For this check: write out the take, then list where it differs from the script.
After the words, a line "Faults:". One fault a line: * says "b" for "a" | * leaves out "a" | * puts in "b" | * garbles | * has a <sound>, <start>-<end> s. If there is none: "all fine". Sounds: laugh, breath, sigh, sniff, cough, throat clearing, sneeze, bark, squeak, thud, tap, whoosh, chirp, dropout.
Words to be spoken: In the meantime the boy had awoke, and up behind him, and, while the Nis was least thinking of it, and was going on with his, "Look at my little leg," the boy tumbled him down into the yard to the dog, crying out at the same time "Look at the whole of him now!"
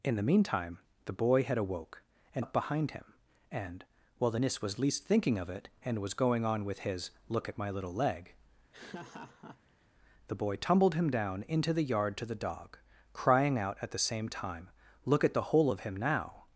In the meantime the boy had awoke, and up behind him, and, while the Nis was least thinking of it, and was going on with his, "Look at my little leg," the boy tumbled him down into the yard to the dog, crying out at the same time "Look at the whole of him now!"
Faults:
* has a laugh, 8.7-9.9 s